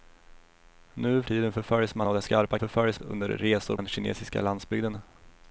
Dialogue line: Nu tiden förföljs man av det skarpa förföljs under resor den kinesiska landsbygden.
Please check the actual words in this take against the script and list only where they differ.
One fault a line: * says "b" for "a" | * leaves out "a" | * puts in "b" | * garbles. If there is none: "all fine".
all fine